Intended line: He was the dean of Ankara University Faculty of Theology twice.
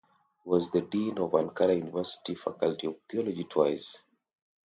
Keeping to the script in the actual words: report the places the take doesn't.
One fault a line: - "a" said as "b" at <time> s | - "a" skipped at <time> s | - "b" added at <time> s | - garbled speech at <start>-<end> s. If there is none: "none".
none